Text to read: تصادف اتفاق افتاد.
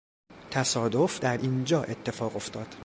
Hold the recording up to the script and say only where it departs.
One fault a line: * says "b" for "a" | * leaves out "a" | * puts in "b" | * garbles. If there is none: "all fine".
* puts in "در اینجا"